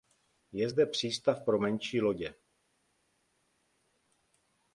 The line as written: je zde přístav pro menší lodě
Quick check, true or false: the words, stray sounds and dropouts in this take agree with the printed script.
true